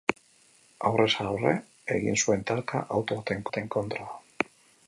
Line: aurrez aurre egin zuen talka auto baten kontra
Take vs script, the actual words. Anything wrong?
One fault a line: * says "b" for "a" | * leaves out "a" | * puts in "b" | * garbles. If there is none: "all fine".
* puts in "baten"